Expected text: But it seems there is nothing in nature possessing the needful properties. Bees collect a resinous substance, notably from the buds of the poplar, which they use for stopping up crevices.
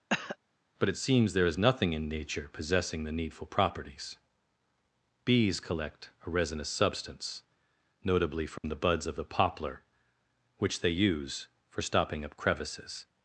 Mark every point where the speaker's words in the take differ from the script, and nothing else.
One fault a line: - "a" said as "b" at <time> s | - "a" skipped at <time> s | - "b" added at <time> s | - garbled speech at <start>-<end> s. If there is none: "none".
none